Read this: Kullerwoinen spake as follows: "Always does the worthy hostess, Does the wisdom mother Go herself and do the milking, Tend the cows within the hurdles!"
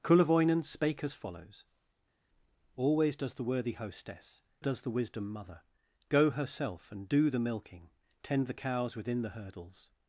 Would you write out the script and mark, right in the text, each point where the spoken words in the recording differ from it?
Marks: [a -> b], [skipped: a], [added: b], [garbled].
Kullerwoinen spake as follows: "Always does the worthy hostess, Does the wisdom mother Go herself and do the milking, Tend the cows within the hurdles!"